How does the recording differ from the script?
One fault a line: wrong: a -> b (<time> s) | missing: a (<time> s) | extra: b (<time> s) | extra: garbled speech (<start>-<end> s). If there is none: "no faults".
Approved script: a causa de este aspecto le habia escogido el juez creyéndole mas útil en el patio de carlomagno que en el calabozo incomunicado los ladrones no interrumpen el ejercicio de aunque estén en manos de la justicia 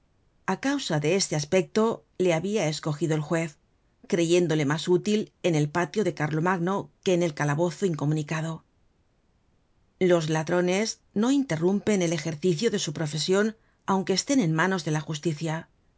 extra: su profesion (12.8 s)